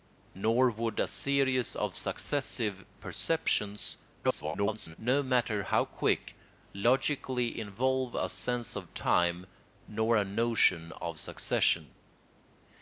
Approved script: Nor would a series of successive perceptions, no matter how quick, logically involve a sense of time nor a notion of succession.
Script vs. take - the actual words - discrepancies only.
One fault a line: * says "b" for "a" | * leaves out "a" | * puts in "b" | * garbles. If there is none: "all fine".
* garbles